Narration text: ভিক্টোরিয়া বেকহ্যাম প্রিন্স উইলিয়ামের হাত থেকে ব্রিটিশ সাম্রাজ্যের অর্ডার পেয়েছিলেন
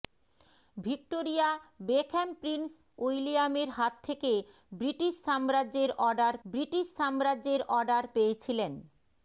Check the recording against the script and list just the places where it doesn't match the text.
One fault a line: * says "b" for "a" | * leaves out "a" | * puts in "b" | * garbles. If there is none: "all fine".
* puts in "ব্রিটিশ সাম্রাজ্যের অর্ডার"